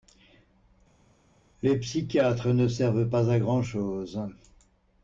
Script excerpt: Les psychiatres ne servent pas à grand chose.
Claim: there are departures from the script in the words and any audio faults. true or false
false